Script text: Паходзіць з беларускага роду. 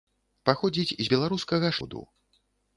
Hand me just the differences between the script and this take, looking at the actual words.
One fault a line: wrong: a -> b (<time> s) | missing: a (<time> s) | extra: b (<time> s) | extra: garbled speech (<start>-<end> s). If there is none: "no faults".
no faults